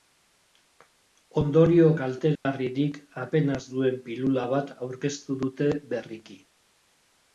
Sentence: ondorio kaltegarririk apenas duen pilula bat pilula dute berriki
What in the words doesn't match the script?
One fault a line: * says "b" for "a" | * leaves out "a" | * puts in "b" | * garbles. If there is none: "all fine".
* says "aurkeztu" for "pilula"